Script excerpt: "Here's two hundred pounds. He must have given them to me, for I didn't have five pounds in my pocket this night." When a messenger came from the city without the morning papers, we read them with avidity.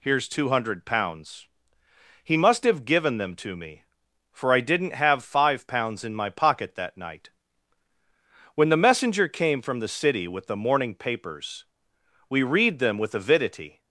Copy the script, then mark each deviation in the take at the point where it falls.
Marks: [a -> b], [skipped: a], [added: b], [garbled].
"Here's two hundred pounds. He must have given them to me, for I didn't have five pounds in my pocket [this -> that] night." When [a -> the] messenger came from the city [without -> with] the morning papers, we read them with avidity.